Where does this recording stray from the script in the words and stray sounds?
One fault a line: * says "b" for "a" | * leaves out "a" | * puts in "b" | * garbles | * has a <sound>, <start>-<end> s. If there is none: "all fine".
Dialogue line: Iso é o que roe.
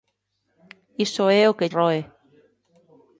all fine